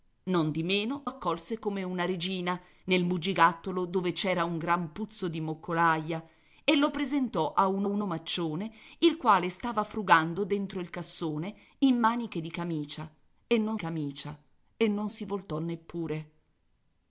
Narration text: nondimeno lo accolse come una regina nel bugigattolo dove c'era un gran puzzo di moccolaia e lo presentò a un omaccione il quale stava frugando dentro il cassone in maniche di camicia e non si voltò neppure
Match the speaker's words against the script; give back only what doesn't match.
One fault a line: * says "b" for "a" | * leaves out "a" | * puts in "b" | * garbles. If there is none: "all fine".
* leaves out "lo"
* puts in "un"
* puts in "camicia e non"